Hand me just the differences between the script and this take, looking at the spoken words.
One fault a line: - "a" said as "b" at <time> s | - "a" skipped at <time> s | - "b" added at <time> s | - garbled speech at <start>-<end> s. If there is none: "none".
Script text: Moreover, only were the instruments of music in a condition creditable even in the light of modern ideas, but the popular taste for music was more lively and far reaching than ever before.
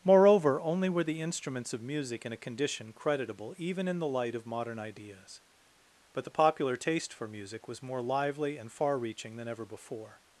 none